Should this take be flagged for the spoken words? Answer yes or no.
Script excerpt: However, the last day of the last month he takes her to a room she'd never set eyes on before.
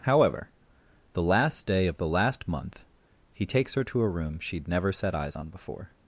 no